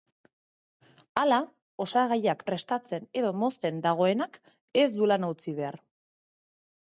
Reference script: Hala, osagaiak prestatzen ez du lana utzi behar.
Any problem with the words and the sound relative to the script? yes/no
yes